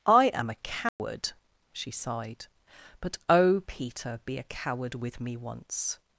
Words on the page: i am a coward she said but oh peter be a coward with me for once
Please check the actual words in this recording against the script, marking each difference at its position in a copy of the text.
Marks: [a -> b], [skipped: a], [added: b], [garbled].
i am a coward she [said -> sighed] but oh peter be a coward with me [skipped: for] once